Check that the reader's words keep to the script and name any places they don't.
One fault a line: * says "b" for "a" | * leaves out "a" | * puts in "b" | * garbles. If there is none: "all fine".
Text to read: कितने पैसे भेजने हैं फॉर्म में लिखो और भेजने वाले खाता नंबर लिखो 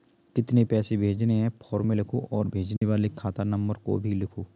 * puts in "को भी"